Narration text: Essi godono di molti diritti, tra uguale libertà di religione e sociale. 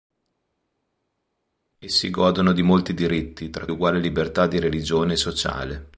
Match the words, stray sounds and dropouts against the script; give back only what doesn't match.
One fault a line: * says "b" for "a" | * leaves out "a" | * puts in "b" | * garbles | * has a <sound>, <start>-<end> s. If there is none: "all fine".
all fine